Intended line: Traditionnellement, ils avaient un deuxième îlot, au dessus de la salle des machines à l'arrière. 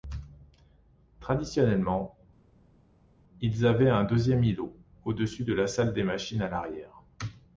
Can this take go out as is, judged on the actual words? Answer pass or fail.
pass